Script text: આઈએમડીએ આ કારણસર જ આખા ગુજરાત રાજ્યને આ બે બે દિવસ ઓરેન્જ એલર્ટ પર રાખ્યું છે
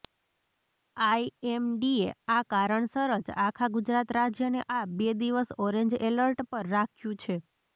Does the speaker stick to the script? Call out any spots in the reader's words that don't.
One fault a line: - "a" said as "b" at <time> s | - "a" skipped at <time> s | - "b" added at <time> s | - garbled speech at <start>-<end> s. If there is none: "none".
- "બે" skipped at 5.1 s